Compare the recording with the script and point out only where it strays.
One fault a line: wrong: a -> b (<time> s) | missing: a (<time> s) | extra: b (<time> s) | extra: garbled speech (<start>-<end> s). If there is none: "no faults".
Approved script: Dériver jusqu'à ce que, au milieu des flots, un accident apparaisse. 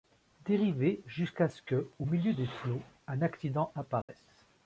no faults